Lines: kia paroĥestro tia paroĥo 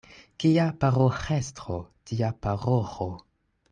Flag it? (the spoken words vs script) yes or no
no